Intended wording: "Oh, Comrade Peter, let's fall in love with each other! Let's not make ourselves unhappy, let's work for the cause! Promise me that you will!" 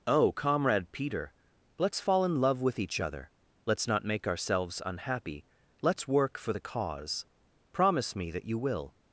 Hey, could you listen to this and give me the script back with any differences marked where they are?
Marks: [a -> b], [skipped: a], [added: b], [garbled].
"Oh, Comrade Peter, let's fall in love with each other! Let's not make ourselves unhappy, let's work for the cause! Promise me that you will!"